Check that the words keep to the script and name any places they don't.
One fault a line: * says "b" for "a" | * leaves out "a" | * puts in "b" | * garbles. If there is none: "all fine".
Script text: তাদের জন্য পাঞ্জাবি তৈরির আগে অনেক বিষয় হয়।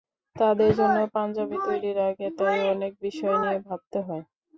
* puts in "তাই"
* puts in "নিয়ে ভাবতে"